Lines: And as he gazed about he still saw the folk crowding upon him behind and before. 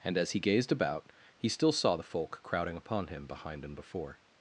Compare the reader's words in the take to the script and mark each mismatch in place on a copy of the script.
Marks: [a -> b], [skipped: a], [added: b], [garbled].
And as he gazed about he still saw the folk crowding upon him behind and before.